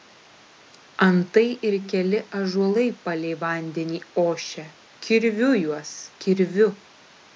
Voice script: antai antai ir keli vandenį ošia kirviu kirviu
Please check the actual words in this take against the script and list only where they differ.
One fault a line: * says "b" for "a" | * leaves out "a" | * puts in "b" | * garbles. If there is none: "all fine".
* leaves out "antai"
* puts in "ąžuolai palei"
* puts in "juos"